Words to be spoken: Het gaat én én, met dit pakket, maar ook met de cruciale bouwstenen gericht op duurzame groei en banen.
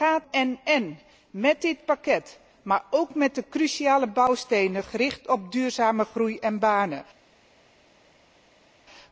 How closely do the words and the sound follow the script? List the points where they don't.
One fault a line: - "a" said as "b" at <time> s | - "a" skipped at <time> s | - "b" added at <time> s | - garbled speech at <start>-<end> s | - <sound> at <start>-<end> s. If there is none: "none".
none